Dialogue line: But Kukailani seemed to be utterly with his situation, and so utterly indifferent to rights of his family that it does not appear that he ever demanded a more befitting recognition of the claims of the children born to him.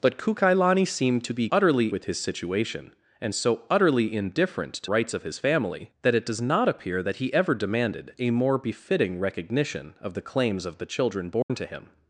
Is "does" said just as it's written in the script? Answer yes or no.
yes